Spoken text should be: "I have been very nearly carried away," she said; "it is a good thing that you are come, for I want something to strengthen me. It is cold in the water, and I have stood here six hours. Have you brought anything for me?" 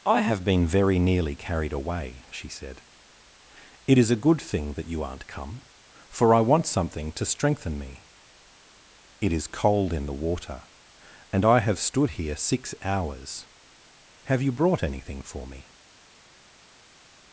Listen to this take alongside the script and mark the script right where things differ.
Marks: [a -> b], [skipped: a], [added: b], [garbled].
"I have been very nearly carried away," she said; "it is a good thing that you [are -> aren't] come, for I want something to strengthen me. It is cold in the water, and I have stood here six hours. Have you brought anything for me?"